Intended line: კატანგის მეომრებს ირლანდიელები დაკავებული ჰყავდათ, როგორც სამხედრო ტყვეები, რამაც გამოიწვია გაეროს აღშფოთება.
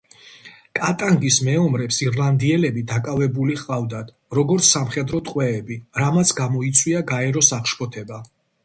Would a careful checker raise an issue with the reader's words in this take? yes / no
no